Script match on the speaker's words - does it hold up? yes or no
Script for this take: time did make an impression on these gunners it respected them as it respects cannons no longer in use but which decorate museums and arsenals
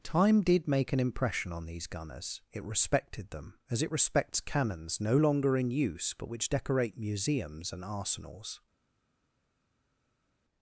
yes